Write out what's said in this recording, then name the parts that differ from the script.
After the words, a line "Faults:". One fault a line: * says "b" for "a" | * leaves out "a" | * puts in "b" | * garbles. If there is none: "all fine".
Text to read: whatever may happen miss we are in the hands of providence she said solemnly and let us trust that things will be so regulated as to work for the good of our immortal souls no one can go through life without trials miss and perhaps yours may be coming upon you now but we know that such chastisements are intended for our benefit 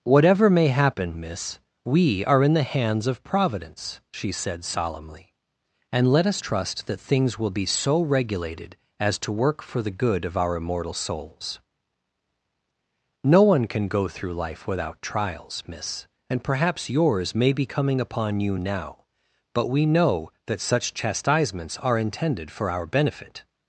whatever may happen miss we are in the hands of providence she said solemnly and let us trust that things will be so regulated as to work for the good of our immortal souls no one can go through life without trials miss and perhaps yours may be coming upon you now but we know that such chastisements are intended for our benefit
Faults:
all fine